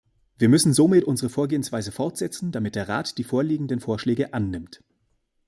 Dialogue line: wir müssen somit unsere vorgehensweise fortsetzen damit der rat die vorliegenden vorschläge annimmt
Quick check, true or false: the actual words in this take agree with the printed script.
true